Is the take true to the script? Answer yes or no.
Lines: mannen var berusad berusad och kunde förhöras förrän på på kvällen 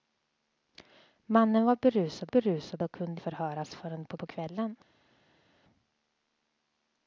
yes